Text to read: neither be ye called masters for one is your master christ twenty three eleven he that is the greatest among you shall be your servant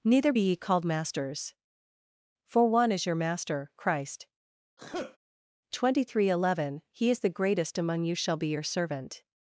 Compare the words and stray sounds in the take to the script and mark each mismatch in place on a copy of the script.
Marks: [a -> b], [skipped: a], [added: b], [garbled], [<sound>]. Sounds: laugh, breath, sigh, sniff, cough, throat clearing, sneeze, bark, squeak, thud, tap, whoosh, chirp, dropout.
neither be ye called masters for one is your master christ [sneeze] twenty three eleven he [skipped: that] is the greatest among you shall be your servant